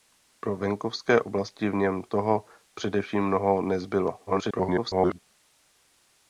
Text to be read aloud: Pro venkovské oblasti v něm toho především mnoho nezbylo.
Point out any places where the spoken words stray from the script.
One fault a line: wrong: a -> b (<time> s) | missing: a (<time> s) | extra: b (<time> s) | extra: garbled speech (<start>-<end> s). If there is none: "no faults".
extra: garbled speech (4.3-5.2 s)